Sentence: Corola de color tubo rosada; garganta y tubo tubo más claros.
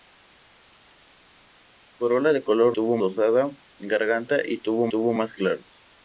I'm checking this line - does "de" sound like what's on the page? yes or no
yes